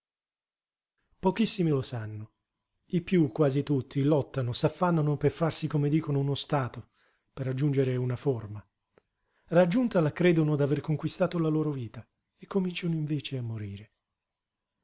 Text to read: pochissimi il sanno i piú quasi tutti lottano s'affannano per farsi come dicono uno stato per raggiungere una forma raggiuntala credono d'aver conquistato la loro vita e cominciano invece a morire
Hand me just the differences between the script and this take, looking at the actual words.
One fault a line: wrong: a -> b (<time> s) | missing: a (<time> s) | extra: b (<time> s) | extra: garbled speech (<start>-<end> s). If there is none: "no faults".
wrong: il -> lo (1.7 s)